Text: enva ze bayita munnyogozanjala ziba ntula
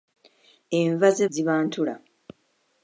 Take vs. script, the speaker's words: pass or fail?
fail